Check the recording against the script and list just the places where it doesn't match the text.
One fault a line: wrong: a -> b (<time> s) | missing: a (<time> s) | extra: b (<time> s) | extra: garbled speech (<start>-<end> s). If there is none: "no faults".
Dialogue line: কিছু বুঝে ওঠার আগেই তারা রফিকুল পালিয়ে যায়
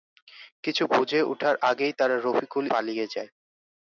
no faults